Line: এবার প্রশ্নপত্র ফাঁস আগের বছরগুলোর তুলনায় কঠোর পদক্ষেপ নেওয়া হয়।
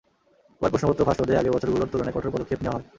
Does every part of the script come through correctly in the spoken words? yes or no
no